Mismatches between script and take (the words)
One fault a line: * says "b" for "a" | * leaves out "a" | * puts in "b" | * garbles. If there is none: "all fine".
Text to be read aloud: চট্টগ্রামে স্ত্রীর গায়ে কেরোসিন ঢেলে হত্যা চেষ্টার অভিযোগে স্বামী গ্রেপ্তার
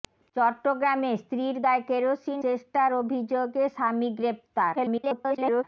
* leaves out "ঢেলে হত্যা"
* garbles